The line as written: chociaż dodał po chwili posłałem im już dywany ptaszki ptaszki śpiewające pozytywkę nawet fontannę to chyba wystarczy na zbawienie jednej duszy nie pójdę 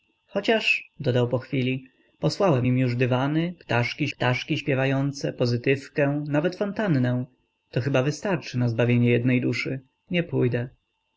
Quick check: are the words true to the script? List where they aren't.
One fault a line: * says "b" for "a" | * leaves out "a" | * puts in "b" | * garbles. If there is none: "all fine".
all fine